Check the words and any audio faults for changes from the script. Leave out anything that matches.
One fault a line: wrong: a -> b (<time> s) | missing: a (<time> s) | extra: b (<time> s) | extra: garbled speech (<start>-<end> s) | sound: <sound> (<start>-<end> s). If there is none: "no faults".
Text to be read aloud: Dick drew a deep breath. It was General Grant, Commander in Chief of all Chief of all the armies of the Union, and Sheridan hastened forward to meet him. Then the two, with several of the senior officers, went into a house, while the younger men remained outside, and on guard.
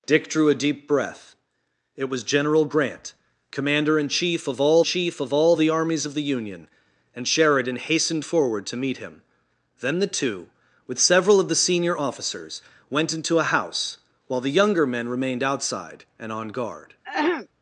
sound: throat clearing (17.0-17.5 s)